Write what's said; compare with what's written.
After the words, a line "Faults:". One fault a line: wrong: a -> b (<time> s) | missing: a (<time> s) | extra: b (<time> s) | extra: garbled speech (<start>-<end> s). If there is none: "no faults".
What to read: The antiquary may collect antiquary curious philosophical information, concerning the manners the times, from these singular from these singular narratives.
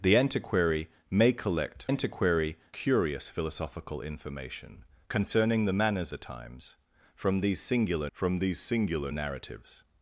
The antiquary may collect antiquary curious philosophical information, concerning the manners the times, from these singular from these singular narratives.
Faults:
no faults